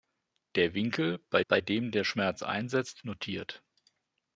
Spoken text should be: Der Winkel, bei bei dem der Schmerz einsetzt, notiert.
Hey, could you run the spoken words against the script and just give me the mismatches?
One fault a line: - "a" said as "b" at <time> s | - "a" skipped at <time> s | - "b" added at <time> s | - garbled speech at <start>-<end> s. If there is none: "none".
none